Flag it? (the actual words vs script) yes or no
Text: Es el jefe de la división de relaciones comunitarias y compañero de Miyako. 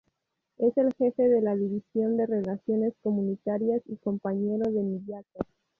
no